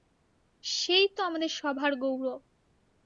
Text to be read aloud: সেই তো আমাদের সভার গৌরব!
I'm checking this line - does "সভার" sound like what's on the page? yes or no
yes